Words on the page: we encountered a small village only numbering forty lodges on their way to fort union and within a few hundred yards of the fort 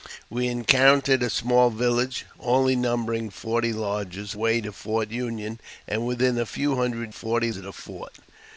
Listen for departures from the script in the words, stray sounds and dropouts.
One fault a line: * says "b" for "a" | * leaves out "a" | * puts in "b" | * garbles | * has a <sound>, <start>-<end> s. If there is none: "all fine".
* leaves out "on their"
* says "forty" for "yards"